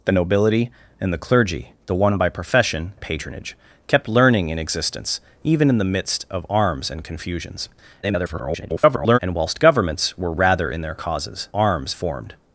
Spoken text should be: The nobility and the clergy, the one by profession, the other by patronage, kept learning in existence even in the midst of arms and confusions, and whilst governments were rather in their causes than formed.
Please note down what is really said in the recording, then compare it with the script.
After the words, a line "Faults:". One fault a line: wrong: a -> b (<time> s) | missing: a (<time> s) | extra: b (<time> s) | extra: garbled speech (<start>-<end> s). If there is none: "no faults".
The nobility and the clergy, the one by profession, patronage, kept learning in existence even in the midst of arms and confusions, [garbled] and whilst governments were rather in their causes arms formed.
Faults:
missing: the other by (2.9 s)
extra: garbled speech (8.0-9.2 s)
wrong: than -> arms (11.5 s)